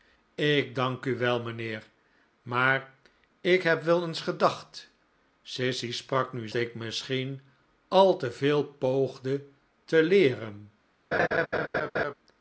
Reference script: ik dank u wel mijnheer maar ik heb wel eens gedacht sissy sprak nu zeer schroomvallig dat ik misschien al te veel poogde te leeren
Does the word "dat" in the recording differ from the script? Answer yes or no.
yes